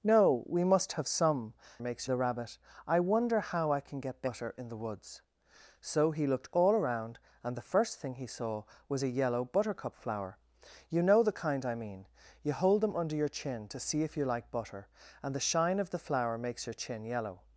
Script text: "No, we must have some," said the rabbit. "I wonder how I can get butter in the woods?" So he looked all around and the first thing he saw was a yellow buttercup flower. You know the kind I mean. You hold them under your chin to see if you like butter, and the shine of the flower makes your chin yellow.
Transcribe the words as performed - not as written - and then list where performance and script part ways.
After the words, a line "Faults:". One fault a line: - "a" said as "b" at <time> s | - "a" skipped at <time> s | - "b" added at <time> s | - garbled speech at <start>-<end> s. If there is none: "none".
"No, we must have some," makes the rabbit. "I wonder how I can get butter in the woods?" So he looked all around and the first thing he saw was a yellow buttercup flower. You know the kind I mean. You hold them under your chin to see if you like butter, and the shine of the flower makes your chin yellow.
Faults:
- "said" said as "makes" at 1.8 s